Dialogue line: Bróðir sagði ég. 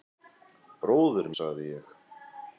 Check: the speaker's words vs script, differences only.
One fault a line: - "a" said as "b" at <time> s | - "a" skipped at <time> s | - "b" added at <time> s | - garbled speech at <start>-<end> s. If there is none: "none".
none